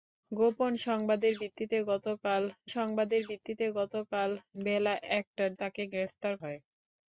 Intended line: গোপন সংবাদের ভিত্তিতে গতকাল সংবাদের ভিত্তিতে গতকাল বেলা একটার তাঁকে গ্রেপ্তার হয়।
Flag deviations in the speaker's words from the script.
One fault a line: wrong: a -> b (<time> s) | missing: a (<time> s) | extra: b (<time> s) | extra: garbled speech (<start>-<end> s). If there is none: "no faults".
no faults